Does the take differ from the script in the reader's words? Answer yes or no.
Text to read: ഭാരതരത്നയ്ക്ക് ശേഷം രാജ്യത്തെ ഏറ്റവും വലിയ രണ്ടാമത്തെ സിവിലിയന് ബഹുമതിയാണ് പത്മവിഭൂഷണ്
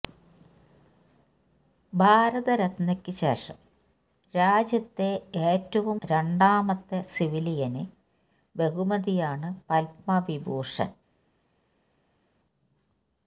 yes